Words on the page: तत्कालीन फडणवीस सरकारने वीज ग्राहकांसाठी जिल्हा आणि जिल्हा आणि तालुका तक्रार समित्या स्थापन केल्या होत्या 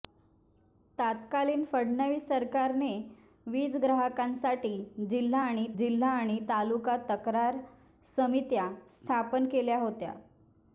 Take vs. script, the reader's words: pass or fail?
pass